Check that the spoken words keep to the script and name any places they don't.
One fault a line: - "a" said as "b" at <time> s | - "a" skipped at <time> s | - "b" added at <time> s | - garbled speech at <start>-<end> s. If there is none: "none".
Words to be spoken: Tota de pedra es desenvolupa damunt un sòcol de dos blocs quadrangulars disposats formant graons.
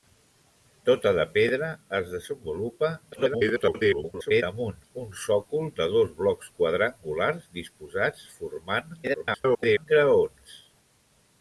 - garbled speech at 3.1-4.4 s
- garbled speech at 9.0-9.9 s